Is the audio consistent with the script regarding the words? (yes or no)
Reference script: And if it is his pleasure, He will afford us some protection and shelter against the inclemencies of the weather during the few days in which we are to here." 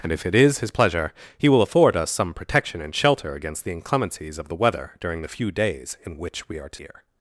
yes